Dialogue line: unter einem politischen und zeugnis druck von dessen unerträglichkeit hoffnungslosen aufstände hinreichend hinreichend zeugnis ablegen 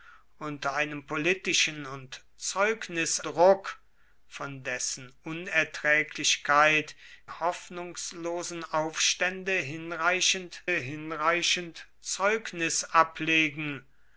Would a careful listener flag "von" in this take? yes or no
no